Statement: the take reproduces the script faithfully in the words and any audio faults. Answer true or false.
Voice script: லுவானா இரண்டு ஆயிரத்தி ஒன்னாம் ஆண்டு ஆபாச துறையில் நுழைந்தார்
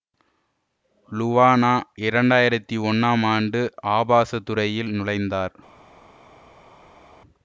true